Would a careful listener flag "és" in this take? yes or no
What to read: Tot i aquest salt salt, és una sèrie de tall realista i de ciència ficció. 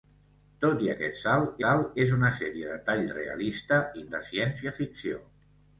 no